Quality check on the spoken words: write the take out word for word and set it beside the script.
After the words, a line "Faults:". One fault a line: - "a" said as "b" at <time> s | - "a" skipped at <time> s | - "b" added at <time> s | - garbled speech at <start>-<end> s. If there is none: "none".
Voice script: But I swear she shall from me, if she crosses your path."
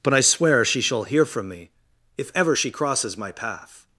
But I swear she shall hear from me, if ever she crosses my path."
Faults:
- "hear" added at 1.0 s
- "ever" added at 2.3 s
- "your" said as "my" at 3.2 s